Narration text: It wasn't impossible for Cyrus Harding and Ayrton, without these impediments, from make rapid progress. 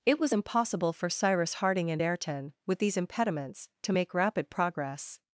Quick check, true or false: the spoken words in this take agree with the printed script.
false